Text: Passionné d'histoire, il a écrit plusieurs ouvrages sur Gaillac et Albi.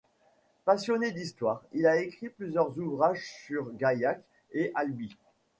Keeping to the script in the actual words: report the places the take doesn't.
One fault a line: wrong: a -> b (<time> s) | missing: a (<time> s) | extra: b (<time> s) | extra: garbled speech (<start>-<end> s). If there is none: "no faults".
no faults